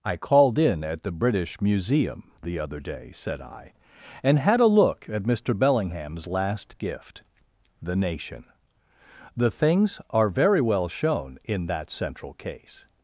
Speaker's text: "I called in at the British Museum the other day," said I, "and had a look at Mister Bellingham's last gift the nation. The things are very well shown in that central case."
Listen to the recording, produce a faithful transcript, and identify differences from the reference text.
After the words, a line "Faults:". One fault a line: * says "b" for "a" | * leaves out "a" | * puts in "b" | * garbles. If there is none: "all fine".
"I called in at the British Museum the other day," said I, "and had a look at Mister Bellingham's last gift the nation. The things are very well shown in that central case."
Faults:
all fine